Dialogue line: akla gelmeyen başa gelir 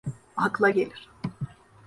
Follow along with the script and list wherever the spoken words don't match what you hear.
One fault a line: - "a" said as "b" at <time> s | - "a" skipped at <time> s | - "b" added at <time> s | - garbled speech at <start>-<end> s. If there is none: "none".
- "gelmeyen başa" skipped at 0.7 s